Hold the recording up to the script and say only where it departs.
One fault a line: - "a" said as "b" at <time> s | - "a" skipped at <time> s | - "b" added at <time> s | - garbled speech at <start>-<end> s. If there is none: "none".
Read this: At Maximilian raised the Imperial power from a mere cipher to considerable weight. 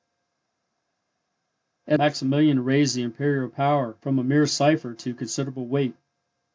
none